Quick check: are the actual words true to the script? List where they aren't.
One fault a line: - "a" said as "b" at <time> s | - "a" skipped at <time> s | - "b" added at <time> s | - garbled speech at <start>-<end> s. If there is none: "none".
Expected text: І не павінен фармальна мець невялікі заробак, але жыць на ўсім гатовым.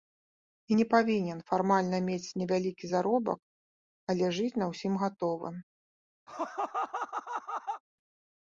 none